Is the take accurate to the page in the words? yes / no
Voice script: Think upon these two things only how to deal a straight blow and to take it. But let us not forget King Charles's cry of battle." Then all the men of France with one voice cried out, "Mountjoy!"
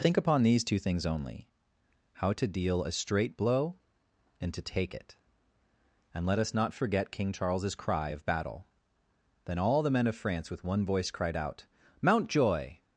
no